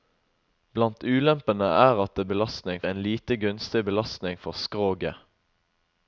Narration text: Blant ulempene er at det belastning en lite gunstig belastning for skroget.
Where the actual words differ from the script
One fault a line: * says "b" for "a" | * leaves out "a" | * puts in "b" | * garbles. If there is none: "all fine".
all fine